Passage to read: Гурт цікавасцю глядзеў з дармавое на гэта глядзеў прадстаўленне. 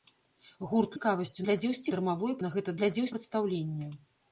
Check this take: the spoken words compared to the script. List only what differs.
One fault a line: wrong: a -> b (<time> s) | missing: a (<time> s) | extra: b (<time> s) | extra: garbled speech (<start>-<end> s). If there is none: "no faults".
no faults